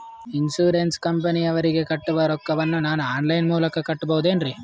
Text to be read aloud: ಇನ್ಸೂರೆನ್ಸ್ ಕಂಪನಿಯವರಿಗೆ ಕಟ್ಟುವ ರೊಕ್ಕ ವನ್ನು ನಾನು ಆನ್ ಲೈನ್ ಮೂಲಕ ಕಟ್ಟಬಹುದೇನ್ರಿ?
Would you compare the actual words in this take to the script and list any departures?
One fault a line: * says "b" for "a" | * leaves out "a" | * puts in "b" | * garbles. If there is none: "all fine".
all fine